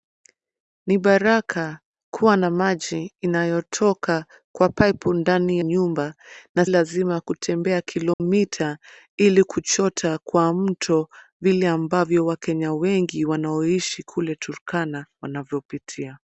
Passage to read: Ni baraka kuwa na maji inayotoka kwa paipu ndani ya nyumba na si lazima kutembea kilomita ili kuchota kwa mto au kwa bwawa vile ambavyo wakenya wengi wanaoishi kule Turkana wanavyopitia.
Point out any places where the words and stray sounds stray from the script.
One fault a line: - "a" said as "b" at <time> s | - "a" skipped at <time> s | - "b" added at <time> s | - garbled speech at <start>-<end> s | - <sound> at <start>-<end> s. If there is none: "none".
- "ya" skipped at 5.6 s
- "si" skipped at 6.6 s
- dropout at 8.1-8.2 s
- "au kwa bwawa" skipped at 11.1 s